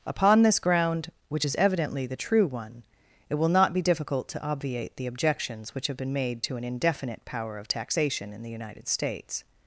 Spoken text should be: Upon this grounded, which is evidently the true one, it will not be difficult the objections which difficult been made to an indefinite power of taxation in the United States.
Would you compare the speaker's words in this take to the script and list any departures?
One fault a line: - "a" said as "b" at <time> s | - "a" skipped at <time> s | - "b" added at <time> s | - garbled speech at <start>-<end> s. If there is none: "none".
- "grounded" said as "ground" at 0.6 s
- "to obviate" added at 4.3 s
- "difficult" said as "have" at 5.9 s